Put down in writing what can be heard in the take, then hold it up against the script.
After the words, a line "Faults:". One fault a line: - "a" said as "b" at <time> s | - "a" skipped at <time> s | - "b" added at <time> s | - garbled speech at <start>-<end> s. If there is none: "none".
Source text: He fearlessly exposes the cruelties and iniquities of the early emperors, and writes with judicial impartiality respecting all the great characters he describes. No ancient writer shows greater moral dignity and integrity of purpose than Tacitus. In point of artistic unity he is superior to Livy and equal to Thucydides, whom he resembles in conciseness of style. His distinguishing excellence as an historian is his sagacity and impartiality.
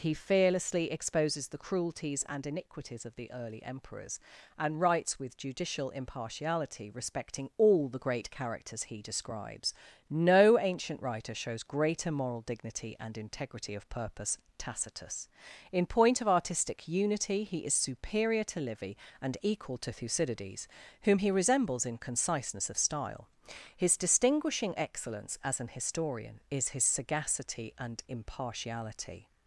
He fearlessly exposes the cruelties and iniquities of the early emperors, and writes with judicial impartiality respecting all the great characters he describes. No ancient writer shows greater moral dignity and integrity of purpose Tacitus. In point of artistic unity he is superior to Livy and equal to Thucydides, whom he resembles in conciseness of style. His distinguishing excellence as an historian is his sagacity and impartiality.
Faults:
- "than" skipped at 14.4 s